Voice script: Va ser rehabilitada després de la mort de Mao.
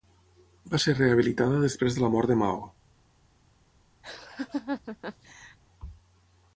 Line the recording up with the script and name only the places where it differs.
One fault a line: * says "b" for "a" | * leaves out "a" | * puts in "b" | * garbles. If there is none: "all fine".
all fine